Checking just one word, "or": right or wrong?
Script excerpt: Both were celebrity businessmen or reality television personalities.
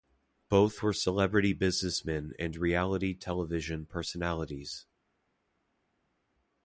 wrong